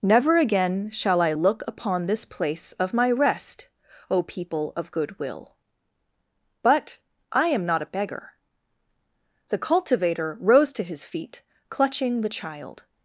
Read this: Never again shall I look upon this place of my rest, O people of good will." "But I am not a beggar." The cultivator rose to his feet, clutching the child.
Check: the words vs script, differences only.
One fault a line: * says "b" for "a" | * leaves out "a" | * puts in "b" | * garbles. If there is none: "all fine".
all fine